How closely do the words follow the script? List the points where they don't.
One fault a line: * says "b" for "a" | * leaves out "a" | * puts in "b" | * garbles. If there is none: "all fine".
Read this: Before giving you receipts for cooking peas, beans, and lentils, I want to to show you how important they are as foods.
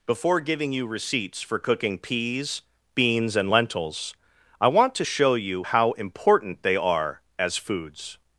* leaves out "to"